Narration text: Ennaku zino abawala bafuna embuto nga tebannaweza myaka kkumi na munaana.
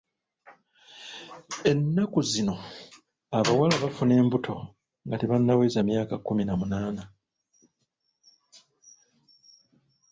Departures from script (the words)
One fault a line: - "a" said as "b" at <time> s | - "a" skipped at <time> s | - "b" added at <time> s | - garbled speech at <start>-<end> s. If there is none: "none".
none